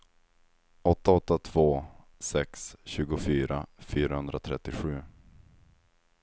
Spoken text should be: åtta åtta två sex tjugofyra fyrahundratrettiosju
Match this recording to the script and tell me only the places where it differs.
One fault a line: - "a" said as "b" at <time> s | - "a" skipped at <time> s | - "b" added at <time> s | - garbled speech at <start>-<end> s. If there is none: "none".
none